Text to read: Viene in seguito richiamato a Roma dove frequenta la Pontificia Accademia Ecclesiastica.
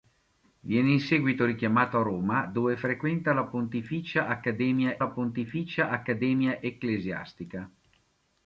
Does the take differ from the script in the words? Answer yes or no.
yes